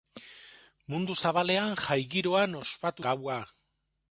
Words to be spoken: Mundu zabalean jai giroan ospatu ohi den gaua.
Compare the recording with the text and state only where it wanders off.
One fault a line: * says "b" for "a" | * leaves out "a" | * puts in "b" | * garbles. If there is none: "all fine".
* leaves out "ohi den"